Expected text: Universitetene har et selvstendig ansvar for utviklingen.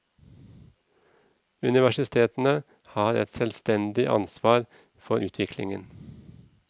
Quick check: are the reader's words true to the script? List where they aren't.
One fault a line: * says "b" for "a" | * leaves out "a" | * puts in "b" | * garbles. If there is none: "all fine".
all fine